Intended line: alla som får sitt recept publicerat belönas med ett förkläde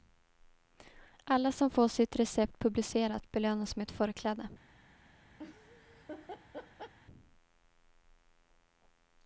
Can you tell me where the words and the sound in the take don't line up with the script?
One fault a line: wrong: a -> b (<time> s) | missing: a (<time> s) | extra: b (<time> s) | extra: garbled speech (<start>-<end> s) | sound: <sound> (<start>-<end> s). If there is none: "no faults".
sound: laugh (5.4-6.9 s)